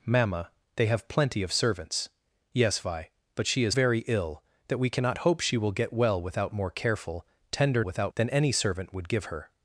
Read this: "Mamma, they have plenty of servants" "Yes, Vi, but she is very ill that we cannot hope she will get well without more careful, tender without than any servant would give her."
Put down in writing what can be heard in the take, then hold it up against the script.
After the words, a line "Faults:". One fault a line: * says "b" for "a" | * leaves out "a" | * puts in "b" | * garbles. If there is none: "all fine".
"Mamma, they have plenty of servants" "Yes, Vi, but she is very ill that we cannot hope she will get well without more careful, tender without than any servant would give her."
Faults:
all fine